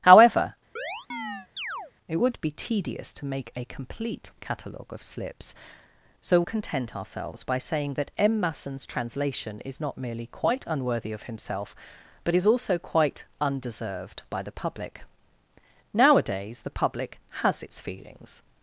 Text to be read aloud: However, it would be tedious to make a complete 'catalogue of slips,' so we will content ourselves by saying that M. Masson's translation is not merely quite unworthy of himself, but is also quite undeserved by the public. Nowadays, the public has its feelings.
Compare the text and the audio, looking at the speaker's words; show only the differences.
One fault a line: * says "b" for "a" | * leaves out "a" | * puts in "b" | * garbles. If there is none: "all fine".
* leaves out "we will"